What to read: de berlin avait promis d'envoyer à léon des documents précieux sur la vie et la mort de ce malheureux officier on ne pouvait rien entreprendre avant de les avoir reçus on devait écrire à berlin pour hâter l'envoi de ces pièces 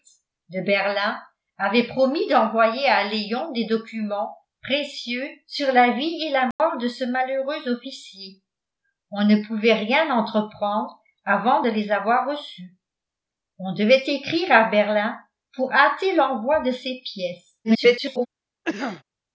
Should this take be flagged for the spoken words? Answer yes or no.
yes